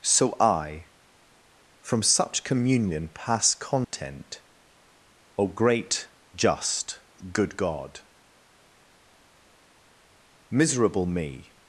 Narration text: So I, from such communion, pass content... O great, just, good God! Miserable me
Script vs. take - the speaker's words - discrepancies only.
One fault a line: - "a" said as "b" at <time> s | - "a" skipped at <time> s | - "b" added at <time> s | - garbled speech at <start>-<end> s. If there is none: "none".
none